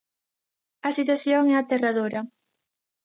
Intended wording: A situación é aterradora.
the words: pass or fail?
pass